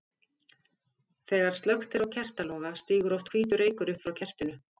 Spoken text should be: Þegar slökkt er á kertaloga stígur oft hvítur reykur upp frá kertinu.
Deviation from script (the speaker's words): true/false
false